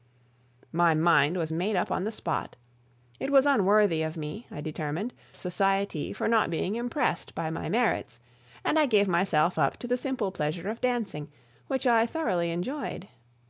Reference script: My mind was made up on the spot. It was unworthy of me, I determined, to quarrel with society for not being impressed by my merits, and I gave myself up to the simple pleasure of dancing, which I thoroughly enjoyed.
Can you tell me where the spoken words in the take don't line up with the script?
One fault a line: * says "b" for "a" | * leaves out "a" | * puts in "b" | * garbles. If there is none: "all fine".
* leaves out "to quarrel with"